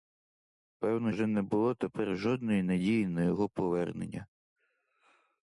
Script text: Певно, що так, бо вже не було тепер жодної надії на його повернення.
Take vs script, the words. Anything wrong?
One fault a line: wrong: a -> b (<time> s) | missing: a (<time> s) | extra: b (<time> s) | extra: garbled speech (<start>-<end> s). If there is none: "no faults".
missing: що так бо (1.1 s)